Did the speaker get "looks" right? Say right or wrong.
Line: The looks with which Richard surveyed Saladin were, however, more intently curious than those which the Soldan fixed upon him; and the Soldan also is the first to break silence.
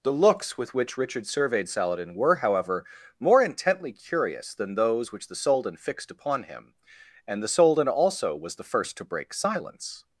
right